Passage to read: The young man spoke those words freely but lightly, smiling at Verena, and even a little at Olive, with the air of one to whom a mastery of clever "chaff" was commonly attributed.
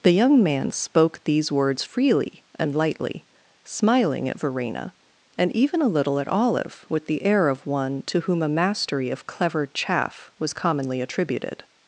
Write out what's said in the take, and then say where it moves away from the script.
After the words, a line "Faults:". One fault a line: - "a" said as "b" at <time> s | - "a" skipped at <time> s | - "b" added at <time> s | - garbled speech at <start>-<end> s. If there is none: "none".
The young man spoke these words freely and lightly, smiling at Verena, and even a little at Olive, with the air of one to whom a mastery of clever "chaff" was commonly attributed.
Faults:
- "those" said as "these" at 1.2 s
- "but" said as "and" at 2.5 s